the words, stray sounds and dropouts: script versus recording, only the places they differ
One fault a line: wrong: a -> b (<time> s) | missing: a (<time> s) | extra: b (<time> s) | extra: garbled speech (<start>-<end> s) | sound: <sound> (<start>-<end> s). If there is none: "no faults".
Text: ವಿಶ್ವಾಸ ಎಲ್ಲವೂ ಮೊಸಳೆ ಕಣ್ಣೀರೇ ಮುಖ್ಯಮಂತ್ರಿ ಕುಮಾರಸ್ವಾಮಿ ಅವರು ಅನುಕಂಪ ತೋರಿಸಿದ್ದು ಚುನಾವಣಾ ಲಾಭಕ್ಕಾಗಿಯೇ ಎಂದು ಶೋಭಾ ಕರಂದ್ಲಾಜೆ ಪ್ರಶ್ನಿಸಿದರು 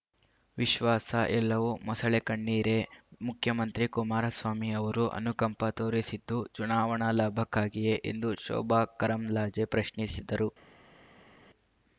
no faults